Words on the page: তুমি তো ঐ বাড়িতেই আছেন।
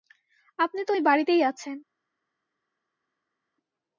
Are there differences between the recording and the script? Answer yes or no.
yes